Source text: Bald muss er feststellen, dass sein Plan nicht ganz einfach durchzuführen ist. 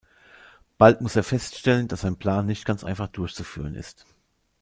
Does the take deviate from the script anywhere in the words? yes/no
no